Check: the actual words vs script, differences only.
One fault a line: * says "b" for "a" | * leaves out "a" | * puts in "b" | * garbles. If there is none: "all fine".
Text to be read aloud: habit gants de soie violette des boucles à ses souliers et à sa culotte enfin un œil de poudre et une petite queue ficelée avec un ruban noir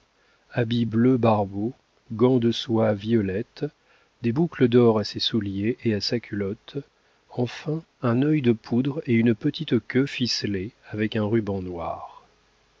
* puts in "bleu barbeau"
* puts in "d'or"